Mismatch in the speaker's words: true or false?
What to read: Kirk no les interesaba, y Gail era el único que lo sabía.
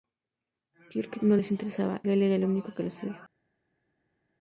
true